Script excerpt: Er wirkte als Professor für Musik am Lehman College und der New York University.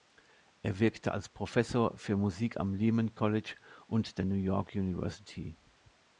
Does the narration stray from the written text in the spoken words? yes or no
no